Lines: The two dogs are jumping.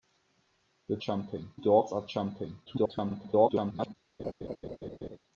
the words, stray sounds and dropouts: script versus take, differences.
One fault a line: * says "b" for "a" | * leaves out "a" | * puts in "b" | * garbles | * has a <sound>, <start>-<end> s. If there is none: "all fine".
* says "jumping" for "two"
* garbles
* has a laugh, 4.2-5.2 s